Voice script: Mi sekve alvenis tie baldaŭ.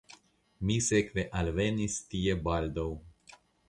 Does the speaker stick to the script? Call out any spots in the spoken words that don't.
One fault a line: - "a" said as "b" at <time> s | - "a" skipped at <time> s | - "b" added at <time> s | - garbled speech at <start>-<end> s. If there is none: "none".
none